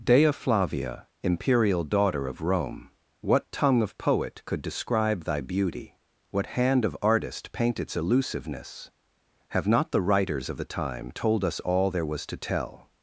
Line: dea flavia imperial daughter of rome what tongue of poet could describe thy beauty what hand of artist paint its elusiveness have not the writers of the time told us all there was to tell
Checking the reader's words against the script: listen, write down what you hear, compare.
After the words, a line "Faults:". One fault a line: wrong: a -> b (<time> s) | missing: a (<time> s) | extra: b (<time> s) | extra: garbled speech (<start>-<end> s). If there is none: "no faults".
dea flavia imperial daughter of rome what tongue of poet could describe thy beauty what hand of artist paint its elusiveness have not the writers of the time told us all there was to tell
Faults:
no faults